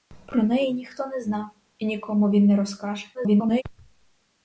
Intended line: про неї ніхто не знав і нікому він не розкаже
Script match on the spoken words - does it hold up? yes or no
no